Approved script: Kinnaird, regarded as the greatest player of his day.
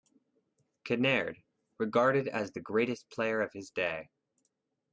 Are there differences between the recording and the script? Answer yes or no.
no